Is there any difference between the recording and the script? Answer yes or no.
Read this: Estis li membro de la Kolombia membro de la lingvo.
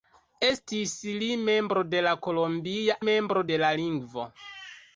no